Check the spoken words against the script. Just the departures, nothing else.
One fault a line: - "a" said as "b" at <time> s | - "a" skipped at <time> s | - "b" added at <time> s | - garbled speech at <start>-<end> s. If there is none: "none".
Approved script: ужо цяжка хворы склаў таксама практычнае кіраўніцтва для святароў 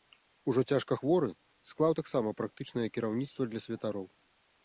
none